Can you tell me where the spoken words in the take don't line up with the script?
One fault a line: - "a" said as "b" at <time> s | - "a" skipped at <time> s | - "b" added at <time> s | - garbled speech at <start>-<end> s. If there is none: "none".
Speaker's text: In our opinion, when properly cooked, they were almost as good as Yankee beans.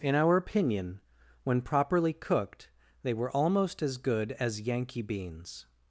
none